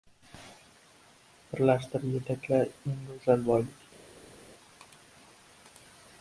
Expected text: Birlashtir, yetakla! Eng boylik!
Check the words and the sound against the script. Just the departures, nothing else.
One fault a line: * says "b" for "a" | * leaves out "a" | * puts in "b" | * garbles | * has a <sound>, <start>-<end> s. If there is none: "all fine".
* puts in "go‘zal"